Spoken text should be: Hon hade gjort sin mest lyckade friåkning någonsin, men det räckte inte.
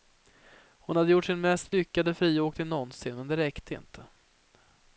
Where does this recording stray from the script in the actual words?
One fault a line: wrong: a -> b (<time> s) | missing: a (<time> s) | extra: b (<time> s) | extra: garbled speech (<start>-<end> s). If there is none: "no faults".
no faults